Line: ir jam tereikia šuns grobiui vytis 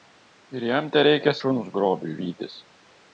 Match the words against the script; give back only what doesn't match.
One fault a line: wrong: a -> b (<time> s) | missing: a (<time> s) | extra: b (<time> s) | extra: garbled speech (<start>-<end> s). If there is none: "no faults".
no faults